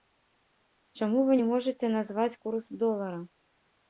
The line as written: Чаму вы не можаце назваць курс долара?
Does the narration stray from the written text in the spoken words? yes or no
no